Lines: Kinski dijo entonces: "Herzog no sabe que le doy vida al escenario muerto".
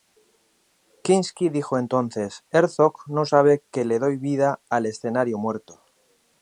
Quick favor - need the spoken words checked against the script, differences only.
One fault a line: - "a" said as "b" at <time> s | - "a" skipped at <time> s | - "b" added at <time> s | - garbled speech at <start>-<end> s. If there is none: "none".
none